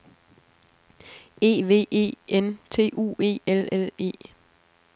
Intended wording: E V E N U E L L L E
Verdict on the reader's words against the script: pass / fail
fail